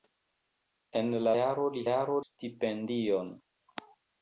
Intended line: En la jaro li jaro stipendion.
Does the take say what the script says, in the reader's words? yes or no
yes